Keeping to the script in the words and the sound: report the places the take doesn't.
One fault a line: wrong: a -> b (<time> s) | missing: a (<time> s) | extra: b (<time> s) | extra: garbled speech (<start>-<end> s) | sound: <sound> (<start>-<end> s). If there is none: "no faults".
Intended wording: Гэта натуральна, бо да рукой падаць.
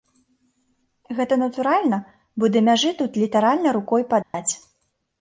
extra: мяжы тут літаральна (2.7 s)
sound: dropout (4.2-4.3 s)